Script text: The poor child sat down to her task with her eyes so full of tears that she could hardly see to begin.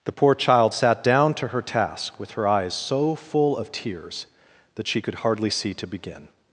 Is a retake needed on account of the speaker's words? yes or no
no